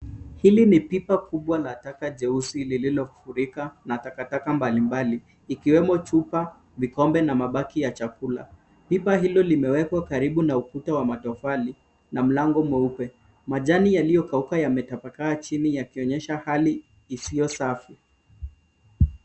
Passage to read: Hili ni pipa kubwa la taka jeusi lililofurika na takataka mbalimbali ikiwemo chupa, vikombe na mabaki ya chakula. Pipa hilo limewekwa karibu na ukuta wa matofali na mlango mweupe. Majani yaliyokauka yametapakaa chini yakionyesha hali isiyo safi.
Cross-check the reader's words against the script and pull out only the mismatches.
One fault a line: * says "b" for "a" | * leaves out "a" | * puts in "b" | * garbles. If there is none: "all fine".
all fine